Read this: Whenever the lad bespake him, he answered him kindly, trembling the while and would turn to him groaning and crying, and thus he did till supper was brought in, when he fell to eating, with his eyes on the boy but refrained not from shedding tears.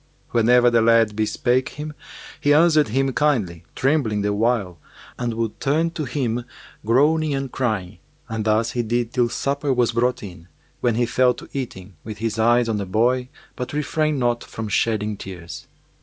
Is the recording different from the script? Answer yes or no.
no